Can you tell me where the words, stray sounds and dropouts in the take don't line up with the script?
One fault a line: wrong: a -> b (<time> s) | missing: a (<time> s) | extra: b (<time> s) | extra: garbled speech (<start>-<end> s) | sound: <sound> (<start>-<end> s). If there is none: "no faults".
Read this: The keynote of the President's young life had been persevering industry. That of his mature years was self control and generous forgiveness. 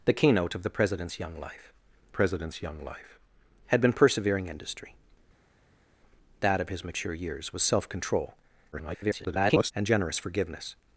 extra: President's young life (2.1 s)
extra: garbled speech (8.7-9.7 s)